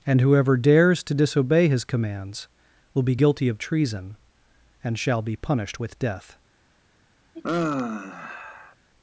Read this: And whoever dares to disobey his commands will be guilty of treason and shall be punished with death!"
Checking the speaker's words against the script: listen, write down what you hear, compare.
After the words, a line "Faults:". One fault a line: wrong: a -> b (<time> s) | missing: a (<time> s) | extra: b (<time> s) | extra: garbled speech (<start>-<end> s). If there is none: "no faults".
And whoever dares to disobey his commands will be guilty of treason and shall be punished with death!"
Faults:
no faults